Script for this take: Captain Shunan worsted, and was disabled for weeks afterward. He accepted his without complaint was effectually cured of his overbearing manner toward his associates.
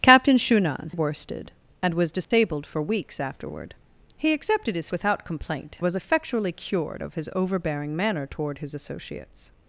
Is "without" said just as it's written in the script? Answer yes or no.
yes